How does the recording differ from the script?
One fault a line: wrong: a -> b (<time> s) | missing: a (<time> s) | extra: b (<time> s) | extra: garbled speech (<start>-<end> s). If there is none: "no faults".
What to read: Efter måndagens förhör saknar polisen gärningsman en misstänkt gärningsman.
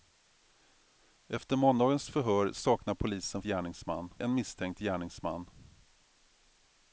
no faults